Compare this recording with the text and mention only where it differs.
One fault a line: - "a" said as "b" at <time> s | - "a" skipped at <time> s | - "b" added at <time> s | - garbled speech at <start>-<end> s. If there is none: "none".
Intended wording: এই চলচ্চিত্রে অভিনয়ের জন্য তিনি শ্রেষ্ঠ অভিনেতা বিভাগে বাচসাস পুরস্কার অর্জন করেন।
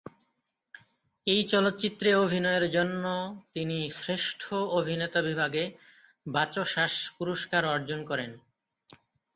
none